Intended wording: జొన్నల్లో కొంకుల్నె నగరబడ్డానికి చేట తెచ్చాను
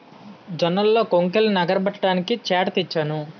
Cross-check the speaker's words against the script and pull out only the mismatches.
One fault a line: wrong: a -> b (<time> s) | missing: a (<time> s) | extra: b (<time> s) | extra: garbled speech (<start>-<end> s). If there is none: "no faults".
no faults